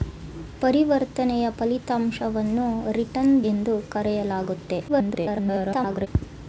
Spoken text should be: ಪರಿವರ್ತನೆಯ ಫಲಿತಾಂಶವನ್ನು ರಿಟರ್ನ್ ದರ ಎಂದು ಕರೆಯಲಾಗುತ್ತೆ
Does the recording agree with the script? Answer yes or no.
no